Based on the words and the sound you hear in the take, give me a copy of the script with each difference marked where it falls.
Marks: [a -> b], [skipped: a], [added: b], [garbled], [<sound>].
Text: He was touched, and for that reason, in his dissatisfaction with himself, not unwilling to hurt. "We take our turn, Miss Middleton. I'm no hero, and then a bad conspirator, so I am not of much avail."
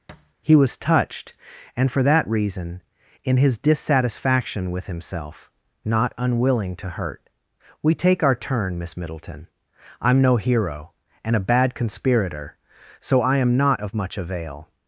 [thud] He was touched, and for that reason, in his dissatisfaction with himself, not unwilling to hurt. "We take our turn, Miss Middleton. I'm no hero, and [skipped: then] a bad conspirator, so I am not of much avail."